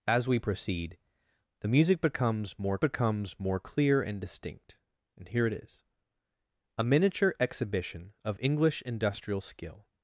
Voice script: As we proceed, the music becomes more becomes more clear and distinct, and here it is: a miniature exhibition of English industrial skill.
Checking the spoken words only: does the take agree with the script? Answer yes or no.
yes